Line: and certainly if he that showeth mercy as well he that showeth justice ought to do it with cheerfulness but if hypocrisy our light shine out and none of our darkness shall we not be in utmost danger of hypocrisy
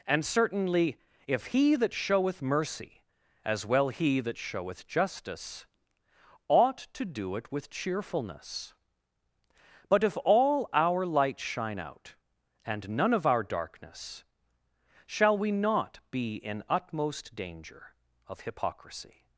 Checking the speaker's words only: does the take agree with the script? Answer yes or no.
no